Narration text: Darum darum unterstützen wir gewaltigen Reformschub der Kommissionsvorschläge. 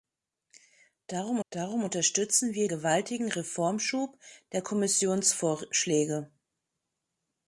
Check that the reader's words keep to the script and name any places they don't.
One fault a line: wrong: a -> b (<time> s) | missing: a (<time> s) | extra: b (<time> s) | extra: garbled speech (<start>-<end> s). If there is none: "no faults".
no faults